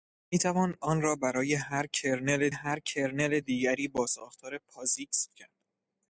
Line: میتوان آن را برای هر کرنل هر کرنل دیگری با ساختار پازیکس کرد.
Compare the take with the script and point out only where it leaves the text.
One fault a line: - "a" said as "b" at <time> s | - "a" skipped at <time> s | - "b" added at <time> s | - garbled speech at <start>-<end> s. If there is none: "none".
none